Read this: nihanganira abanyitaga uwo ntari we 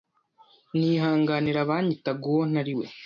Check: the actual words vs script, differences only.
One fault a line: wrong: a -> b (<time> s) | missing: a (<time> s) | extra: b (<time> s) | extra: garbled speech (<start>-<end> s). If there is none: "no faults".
no faults